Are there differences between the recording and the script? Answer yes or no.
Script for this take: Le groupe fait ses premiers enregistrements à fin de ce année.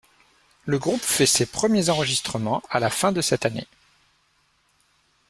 yes